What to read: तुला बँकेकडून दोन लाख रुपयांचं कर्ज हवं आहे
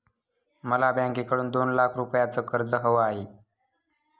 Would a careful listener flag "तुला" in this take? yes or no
yes